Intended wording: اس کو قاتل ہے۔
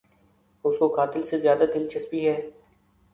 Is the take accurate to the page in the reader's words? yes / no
no